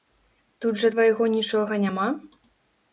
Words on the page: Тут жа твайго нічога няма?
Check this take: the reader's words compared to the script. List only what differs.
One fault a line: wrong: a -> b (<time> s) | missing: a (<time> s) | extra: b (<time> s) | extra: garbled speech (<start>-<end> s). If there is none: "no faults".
no faults